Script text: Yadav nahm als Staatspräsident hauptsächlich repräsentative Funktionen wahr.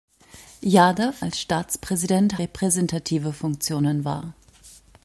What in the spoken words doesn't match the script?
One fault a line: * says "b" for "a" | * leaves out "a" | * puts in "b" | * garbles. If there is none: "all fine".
* leaves out "nahm"
* leaves out "hauptsächlich"